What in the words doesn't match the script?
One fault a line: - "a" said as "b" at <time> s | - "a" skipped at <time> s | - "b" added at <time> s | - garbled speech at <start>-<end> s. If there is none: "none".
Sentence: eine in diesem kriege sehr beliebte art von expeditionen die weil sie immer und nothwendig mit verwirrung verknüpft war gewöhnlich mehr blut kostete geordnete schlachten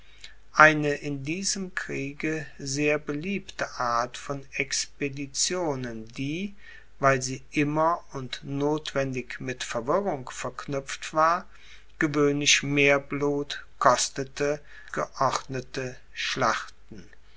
none